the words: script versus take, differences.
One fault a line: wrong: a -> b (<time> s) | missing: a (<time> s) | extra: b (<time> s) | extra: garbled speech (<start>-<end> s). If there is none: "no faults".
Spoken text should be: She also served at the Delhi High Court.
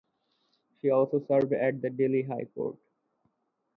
no faults